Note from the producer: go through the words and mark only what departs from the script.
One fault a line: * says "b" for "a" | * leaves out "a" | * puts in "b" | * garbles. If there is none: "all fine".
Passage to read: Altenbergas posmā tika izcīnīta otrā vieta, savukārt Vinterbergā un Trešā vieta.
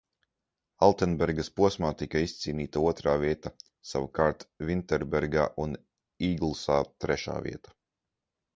* puts in "Īglsā"